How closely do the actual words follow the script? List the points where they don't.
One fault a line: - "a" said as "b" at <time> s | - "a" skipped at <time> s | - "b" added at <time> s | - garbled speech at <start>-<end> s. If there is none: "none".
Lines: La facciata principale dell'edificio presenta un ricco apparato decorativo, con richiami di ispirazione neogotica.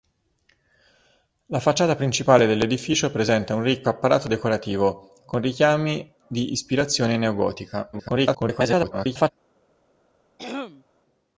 - garbled speech at 7.9-9.3 s